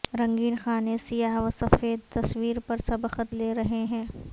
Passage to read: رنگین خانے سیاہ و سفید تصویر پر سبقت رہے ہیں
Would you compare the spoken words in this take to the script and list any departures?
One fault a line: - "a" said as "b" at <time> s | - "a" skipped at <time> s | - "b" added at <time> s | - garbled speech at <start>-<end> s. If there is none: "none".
- "لے" added at 3.3 s